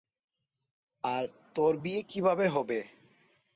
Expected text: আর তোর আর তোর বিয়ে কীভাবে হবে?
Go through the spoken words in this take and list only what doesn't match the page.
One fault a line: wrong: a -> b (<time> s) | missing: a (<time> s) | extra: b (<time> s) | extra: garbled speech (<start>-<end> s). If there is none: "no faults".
missing: আর তোর (1.7 s)